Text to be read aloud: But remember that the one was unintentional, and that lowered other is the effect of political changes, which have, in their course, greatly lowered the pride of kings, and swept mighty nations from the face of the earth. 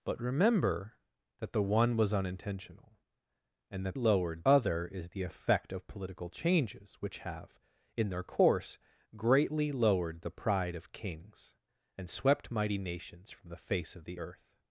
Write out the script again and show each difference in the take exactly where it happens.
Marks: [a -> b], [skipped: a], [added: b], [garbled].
But remember that the one was unintentional, and that lowered other is the effect of political changes, which have, in their course, greatly lowered the pride of kings, and swept mighty nations from the face of the earth.